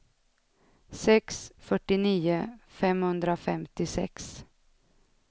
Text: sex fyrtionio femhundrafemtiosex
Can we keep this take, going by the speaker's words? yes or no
yes